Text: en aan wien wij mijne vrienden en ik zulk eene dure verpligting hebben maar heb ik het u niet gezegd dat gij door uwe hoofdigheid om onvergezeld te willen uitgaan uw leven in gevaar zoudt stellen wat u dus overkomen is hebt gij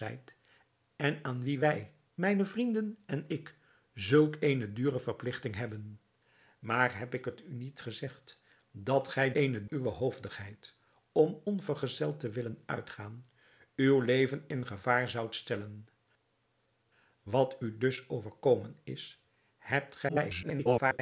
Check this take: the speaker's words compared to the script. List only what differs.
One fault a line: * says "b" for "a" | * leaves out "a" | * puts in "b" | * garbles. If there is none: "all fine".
* says "eene" for "door"
* garbles